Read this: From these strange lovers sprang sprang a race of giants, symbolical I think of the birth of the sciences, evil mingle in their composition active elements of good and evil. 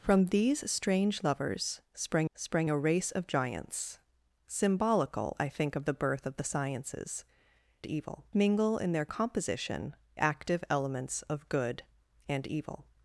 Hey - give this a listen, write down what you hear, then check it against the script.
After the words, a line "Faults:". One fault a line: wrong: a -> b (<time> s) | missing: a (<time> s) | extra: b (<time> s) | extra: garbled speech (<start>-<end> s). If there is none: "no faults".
From these strange lovers sprang sprang a race of giants, symbolical I think of the birth of the sciences, evil mingle in their composition active elements of good and evil.
Faults:
no faults